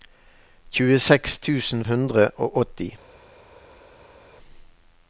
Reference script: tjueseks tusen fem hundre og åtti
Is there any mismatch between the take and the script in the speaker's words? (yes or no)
yes